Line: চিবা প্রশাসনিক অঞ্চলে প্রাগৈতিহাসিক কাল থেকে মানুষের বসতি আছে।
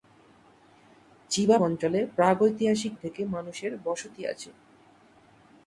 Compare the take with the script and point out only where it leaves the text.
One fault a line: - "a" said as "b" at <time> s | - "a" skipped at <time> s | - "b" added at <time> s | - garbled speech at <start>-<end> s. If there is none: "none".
- "প্রশাসনিক" skipped at 1.6 s
- "কাল" skipped at 2.9 s